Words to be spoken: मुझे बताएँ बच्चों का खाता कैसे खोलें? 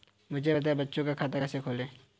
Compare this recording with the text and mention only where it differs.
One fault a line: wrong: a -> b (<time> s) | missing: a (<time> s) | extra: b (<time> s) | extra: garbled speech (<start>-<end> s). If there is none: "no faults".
no faults